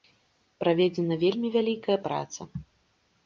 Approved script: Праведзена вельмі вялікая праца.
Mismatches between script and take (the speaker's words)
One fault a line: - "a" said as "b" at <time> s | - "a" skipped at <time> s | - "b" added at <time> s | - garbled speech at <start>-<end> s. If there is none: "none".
none